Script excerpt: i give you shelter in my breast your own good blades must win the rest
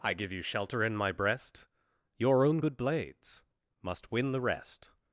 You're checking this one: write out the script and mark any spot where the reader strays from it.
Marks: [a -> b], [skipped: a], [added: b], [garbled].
i give you shelter in my breast your own good blades must win the rest